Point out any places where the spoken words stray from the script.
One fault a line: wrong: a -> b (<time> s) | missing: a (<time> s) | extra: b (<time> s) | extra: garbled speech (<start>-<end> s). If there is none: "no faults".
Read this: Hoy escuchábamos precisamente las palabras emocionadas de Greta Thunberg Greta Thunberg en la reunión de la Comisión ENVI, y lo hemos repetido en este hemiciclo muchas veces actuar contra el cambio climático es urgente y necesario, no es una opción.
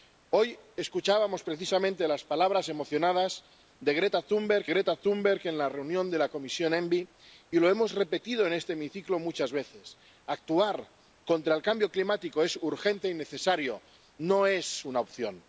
no faults